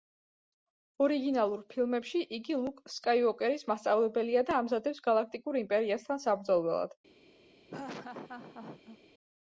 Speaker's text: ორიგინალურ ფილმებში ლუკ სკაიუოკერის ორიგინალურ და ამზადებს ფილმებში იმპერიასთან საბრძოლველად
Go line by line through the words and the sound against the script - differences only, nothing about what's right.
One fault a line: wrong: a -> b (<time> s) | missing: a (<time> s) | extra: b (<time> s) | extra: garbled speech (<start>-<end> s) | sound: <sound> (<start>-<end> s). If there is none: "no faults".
extra: იგი (2.4 s)
wrong: ორიგინალურ -> მასწავლებელია (3.7 s)
wrong: ფილმებში -> გალაქტიკურ (5.1 s)
sound: laugh (7.7-9.0 s)